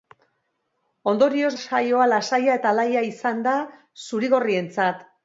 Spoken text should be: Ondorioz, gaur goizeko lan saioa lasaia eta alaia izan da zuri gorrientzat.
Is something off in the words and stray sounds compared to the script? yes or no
yes